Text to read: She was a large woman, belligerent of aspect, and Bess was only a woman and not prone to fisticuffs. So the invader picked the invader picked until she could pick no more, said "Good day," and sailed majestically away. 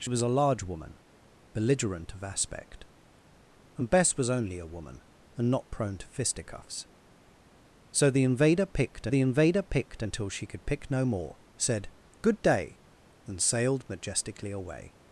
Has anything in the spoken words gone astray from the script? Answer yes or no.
no